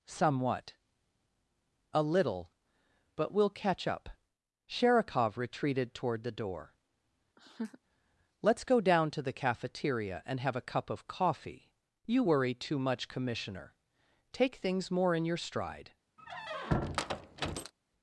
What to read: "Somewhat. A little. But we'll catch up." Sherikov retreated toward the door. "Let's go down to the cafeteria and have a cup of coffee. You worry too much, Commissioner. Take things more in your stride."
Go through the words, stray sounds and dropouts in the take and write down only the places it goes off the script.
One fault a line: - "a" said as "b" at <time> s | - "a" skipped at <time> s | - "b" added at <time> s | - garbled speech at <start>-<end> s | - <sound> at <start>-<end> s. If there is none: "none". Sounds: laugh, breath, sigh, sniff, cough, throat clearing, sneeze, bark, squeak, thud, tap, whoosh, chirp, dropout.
- laugh at 7.4-7.8 s
- squeak at 16.2-17.7 s